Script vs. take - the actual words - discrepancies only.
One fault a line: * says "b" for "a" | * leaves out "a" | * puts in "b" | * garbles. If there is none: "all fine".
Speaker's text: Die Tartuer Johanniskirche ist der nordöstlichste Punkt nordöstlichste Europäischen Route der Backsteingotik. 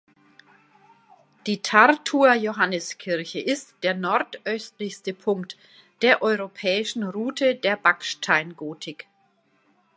* says "der" for "nordöstlichste"